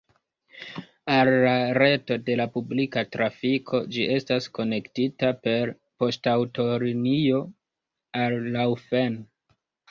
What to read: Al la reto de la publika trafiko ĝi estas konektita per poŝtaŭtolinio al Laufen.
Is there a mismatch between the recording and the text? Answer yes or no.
no